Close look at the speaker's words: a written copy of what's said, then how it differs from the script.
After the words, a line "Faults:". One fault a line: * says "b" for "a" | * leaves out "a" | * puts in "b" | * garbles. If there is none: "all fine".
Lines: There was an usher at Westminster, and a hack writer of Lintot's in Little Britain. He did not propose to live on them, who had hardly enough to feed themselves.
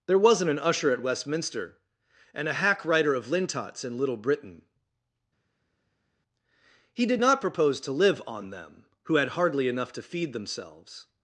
There wasn't an usher at Westminster, and a hack writer of Lintot's in Little Britain. He did not propose to live on them, who had hardly enough to feed themselves.
Faults:
* says "wasn't" for "was"